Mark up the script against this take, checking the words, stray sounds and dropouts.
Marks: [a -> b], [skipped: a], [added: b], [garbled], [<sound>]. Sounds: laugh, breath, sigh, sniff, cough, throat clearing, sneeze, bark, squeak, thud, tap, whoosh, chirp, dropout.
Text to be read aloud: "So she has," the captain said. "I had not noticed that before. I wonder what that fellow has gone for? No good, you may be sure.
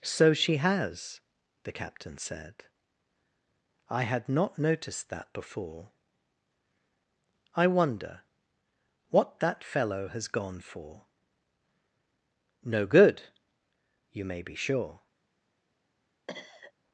"So she has," the captain said. "I had not noticed that before. I wonder what that fellow has gone for? No good, you may be sure. [cough]